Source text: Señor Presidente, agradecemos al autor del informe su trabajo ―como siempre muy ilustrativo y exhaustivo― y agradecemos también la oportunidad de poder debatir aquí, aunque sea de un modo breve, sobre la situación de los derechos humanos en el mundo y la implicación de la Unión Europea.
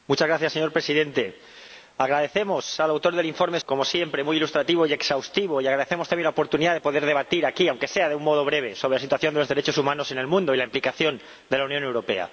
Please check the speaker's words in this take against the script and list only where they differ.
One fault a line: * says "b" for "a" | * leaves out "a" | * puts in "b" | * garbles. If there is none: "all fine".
* leaves out "su trabajo"